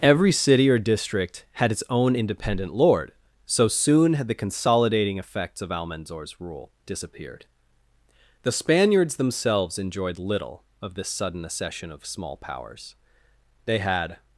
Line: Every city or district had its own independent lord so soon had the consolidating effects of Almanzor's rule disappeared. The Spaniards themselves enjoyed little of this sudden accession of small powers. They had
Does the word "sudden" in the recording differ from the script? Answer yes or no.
no